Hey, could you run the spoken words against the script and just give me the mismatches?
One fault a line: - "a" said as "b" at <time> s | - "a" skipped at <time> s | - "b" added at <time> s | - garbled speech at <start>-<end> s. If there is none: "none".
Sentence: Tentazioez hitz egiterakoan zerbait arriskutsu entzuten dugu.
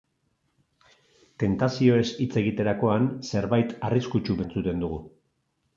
none